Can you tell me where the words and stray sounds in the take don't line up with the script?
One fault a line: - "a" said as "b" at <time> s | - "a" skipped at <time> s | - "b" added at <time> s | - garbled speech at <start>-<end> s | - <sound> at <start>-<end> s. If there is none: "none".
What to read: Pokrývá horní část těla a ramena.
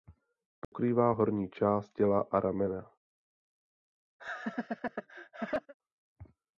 - dropout at 0.6-0.7 s
- laugh at 4.2-5.7 s